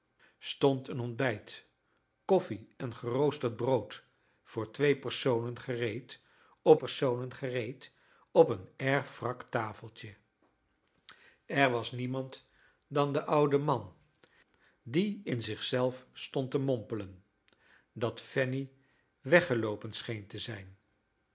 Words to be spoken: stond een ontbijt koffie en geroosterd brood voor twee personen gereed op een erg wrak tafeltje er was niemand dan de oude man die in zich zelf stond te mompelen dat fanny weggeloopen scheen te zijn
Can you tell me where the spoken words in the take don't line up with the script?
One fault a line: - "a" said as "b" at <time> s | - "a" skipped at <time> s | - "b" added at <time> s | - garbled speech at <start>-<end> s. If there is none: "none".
- "personen gereed op" added at 6.7 s